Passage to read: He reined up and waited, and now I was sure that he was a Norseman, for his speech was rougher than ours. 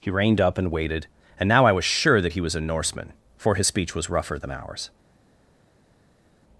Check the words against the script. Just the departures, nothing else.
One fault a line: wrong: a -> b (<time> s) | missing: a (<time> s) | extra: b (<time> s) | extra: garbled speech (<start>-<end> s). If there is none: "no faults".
no faults